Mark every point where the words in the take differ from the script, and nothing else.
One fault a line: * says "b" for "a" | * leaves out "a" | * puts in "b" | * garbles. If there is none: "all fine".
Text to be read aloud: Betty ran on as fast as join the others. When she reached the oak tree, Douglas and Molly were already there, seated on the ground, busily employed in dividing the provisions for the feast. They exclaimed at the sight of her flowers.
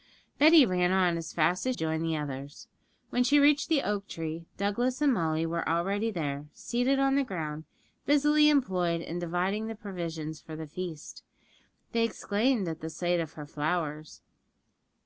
all fine